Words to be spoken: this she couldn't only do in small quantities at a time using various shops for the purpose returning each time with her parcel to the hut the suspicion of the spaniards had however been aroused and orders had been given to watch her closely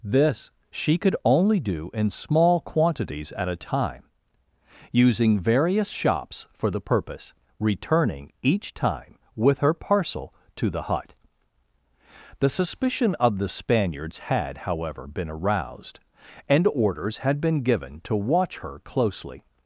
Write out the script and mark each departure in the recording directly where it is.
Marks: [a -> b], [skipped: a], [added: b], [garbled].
this she [couldn't -> could] only do in small quantities at a time using various shops for the purpose returning each time with her parcel to the hut the suspicion of the spaniards had however been aroused and orders had been given to watch her closely